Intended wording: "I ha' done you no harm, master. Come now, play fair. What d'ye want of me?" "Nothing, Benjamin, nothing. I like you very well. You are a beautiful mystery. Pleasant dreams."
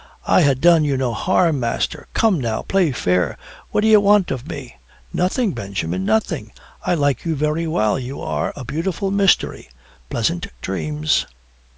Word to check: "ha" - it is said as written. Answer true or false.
true